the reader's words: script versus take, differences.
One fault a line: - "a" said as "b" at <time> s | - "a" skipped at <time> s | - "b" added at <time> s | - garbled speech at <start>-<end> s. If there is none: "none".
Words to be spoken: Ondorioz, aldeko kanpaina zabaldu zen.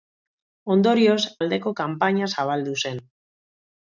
none